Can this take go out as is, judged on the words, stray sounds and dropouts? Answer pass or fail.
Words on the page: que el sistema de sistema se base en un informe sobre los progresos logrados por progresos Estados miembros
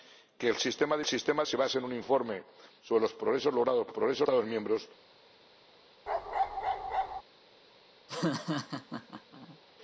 fail